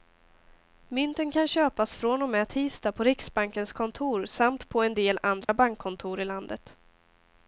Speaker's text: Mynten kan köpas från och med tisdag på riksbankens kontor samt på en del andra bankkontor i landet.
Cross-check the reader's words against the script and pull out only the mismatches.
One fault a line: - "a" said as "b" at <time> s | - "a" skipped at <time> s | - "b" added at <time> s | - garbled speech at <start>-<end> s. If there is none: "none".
none